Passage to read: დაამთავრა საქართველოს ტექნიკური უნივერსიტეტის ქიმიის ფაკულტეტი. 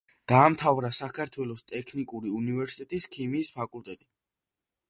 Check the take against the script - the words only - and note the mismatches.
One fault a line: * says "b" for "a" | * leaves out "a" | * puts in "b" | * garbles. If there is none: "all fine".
all fine